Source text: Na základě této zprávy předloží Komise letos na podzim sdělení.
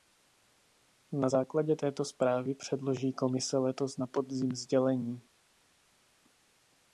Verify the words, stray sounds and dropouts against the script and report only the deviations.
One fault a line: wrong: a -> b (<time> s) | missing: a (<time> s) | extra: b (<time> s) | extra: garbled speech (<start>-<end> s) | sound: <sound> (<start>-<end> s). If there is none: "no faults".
no faults